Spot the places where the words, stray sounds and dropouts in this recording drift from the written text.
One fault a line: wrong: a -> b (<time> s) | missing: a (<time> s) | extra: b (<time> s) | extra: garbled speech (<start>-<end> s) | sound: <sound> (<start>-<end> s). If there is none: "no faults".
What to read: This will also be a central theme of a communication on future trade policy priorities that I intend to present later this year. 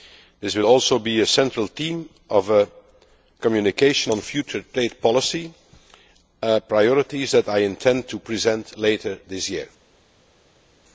no faults